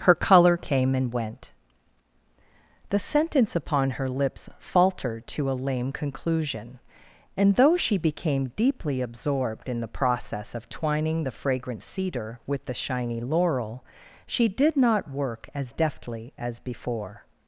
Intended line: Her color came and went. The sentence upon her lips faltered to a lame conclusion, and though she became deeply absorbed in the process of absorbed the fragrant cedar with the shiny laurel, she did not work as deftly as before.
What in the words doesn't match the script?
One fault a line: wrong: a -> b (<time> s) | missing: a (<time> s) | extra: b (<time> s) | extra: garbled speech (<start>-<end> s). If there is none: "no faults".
wrong: absorbed -> twining (10.7 s)